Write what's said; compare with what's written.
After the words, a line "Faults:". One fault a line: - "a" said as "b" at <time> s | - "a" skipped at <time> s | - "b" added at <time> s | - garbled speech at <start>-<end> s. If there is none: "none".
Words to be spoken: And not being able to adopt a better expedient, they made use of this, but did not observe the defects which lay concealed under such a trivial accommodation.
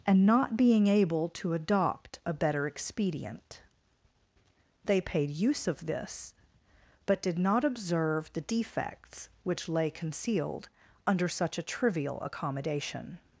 And not being able to adopt a better expedient, they paid use of this, but did not observe the defects which lay concealed under such a trivial accommodation.
Faults:
- "made" said as "paid" at 5.0 s